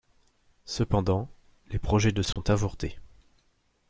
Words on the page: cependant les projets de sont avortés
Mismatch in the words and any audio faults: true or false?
true